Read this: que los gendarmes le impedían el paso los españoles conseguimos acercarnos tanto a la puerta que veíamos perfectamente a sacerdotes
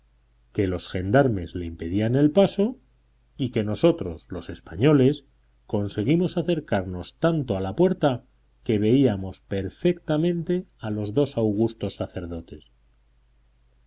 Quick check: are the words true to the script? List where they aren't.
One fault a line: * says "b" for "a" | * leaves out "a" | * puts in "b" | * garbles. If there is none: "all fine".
* puts in "y que nosotros"
* puts in "los dos augustos"